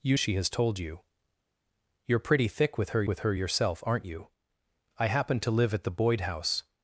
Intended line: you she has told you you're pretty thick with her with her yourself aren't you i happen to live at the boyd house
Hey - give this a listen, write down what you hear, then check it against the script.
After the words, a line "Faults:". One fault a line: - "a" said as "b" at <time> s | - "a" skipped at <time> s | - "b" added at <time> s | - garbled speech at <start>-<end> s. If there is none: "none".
you she has told you you're pretty thick with her with her yourself aren't you i happen to live at the boyd house
Faults:
none